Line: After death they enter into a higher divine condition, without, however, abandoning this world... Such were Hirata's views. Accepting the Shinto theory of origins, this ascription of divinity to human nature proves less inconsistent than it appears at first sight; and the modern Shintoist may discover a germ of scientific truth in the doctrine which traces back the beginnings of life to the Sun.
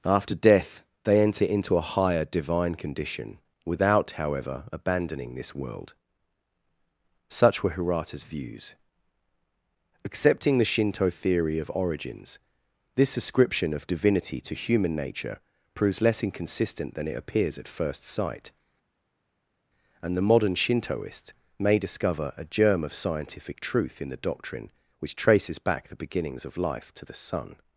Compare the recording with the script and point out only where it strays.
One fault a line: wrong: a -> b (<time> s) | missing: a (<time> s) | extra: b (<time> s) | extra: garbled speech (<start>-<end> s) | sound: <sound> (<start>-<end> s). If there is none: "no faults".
no faults